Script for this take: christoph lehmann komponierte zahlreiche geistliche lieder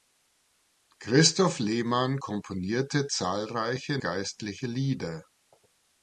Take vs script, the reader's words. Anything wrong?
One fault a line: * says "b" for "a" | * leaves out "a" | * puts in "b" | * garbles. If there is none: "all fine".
all fine